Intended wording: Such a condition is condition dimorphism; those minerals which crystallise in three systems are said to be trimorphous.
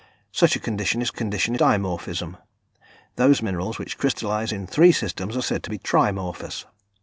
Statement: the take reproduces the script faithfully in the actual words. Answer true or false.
true